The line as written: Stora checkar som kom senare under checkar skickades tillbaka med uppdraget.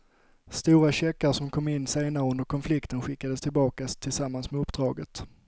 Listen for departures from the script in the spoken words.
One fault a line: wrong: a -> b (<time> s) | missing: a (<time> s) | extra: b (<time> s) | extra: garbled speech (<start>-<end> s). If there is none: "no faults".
extra: in (1.7 s)
wrong: checkar -> konflikten (2.5 s)
extra: tillsammans (3.9 s)